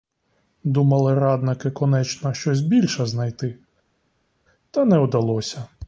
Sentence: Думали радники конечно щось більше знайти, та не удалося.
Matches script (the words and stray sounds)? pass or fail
pass